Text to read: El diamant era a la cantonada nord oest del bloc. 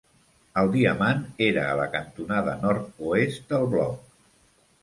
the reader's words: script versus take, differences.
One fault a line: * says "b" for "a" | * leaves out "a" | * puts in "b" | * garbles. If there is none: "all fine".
all fine